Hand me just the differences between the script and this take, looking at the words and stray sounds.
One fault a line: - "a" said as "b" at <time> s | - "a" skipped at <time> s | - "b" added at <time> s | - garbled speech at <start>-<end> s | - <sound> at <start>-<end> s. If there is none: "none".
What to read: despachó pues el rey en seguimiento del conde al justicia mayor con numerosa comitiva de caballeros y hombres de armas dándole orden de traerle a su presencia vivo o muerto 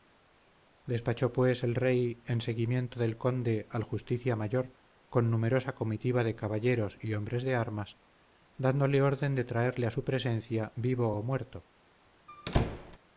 - squeak at 12.3-13.0 s